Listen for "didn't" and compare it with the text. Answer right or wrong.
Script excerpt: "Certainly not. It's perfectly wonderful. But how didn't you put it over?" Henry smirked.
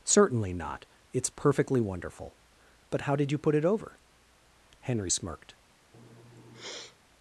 wrong